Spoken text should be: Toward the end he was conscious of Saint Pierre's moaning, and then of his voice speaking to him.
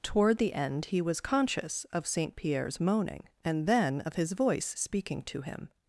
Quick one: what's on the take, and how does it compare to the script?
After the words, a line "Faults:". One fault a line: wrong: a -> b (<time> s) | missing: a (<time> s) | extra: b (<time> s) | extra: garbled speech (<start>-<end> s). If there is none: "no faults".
Toward the end he was conscious of Saint Pierre's moaning, and then of his voice speaking to him.
Faults:
no faults